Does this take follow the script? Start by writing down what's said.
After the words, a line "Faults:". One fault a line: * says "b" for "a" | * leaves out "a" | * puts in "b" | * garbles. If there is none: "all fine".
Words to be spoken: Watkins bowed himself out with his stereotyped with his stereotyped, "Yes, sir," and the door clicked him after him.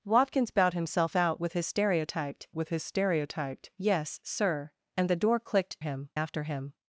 Watkins bowed himself out with his stereotyped with his stereotyped, "Yes, sir," and the door clicked him after him.
Faults:
all fine